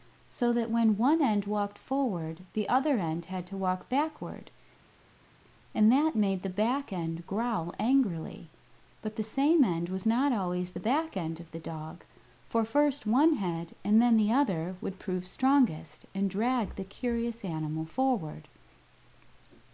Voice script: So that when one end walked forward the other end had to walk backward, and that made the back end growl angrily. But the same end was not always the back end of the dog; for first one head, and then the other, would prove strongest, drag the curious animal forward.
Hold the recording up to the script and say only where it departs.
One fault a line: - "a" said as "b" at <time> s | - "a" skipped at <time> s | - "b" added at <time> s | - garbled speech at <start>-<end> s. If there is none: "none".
- "and" added at 16.1 s